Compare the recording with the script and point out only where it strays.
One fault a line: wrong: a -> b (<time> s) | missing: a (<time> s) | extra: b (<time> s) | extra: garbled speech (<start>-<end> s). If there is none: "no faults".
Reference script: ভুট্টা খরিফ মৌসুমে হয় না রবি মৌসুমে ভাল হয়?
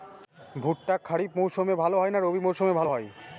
extra: ভাল (1.8 s)